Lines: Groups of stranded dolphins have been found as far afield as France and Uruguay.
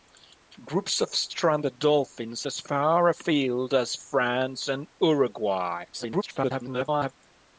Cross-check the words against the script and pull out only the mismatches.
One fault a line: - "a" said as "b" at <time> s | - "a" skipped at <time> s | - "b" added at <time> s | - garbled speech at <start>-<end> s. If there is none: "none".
- "have been found" skipped at 2.5 s
- garbled speech at 5.9-7.1 s